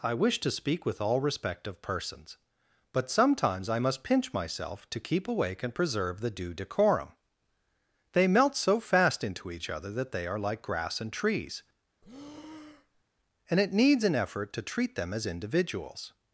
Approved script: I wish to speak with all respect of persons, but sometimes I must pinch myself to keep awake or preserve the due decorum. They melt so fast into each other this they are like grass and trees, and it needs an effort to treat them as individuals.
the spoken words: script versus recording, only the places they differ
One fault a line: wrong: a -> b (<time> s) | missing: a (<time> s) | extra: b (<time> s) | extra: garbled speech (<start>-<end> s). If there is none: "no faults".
wrong: or -> and (5.6 s)
wrong: this -> that (9.9 s)